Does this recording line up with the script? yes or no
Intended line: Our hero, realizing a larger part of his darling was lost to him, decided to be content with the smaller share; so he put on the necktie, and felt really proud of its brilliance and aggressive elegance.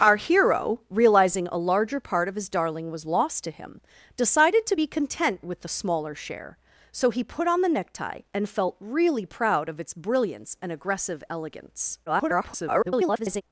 no